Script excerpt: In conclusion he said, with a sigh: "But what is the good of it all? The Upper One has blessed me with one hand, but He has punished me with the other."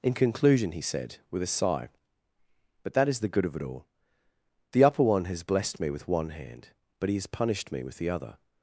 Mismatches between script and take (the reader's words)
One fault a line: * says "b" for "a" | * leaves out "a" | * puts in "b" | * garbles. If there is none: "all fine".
* says "that" for "what"